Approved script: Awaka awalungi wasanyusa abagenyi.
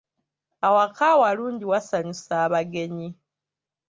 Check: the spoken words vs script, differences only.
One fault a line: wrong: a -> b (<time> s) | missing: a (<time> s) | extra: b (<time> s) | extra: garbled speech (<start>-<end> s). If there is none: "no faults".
no faults